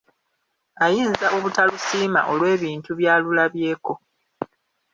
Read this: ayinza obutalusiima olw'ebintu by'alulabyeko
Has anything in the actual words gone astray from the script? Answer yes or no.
no